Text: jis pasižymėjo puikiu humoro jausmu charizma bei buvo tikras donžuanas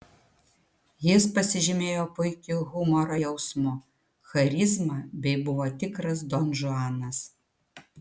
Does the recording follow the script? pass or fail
pass